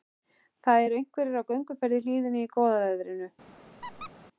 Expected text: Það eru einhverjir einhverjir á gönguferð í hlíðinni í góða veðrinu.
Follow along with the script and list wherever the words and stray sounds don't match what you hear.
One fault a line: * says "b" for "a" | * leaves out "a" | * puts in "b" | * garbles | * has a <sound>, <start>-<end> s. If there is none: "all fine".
* leaves out "einhverjir"
* has a squeak, 3.8-4.1 s